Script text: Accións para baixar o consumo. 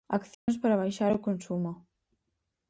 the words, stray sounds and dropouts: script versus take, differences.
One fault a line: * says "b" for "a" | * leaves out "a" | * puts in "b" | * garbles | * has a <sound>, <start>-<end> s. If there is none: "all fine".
* has a dropout, 0.3-0.5 s